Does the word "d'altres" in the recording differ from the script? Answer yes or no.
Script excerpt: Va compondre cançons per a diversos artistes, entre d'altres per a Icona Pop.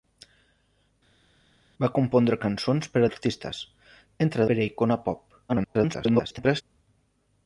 yes